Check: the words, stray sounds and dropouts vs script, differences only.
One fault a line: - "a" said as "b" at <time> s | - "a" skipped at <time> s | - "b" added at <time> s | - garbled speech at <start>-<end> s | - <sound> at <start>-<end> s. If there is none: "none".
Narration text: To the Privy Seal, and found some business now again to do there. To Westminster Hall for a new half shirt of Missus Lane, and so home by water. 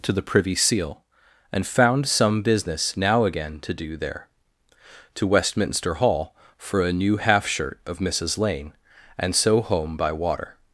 none